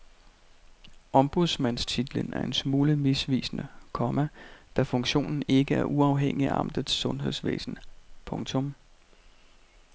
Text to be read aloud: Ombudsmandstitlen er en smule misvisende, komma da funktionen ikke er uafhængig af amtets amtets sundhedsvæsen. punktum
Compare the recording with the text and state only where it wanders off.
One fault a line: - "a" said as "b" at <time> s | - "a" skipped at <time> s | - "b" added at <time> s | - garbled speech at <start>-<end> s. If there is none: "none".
- "amtets" skipped at 6.9 s